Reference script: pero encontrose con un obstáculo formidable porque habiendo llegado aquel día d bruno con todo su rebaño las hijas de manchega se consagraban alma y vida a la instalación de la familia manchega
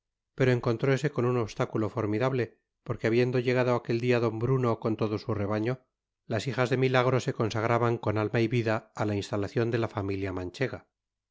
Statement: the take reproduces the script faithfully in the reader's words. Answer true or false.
false